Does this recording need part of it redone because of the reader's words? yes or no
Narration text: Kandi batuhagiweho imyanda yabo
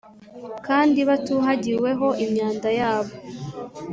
no